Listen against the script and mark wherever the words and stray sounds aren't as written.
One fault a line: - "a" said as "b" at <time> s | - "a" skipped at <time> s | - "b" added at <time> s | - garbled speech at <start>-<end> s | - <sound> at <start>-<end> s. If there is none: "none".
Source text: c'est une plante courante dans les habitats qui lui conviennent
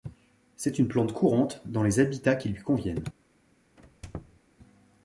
- squeak at 3.8-4.4 s